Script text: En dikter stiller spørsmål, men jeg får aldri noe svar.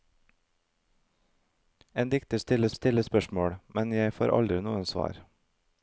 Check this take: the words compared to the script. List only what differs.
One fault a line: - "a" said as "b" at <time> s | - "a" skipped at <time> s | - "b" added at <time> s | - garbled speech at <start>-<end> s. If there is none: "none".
- "stiller" added at 2.7 s